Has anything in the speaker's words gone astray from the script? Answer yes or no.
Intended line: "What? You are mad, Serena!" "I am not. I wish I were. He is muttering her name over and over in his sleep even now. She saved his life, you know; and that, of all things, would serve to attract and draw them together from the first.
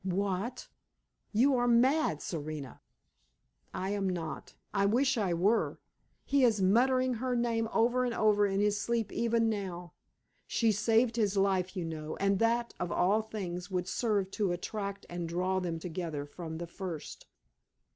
no